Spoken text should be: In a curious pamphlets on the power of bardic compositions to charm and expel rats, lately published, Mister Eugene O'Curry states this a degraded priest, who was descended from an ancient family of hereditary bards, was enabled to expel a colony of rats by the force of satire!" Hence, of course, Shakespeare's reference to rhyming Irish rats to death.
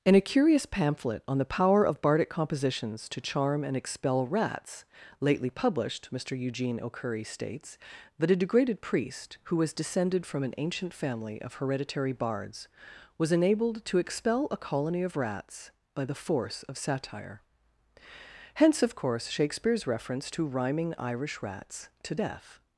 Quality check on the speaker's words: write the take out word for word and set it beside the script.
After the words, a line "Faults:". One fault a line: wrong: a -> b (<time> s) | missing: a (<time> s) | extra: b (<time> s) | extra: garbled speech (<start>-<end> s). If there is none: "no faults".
In a curious pamphlet on the power of bardic compositions to charm and expel rats, lately published, Mister Eugene O'Curry states that a degraded priest, who was descended from an ancient family of hereditary bards, was enabled to expel a colony of rats by the force of satire!" Hence, of course, Shakespeare's reference to rhyming Irish rats to death.
Faults:
wrong: pamphlets -> pamphlet (0.7 s)
wrong: this -> that (8.2 s)